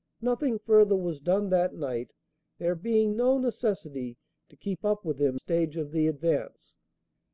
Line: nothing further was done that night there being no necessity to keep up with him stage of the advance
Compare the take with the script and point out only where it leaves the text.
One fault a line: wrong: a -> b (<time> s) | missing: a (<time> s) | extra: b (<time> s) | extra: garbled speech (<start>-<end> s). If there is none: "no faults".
no faults